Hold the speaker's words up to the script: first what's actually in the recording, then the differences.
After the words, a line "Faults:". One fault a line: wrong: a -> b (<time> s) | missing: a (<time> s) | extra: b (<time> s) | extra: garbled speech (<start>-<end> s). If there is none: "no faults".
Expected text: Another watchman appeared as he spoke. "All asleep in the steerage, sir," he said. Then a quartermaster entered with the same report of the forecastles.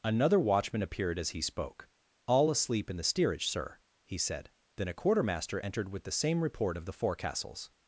Another watchman appeared as he spoke. "All asleep in the steerage, sir," he said. Then a quartermaster entered with the same report of the forecastles.
Faults:
no faults